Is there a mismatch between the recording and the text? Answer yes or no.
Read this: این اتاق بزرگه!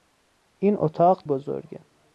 no